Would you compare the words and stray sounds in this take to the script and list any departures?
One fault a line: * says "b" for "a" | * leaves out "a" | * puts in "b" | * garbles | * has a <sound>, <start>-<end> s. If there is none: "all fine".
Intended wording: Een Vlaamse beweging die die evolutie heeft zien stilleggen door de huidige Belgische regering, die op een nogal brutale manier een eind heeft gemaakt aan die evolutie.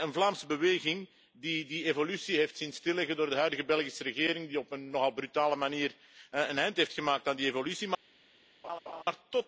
* has a laugh, 8.6-9.0 s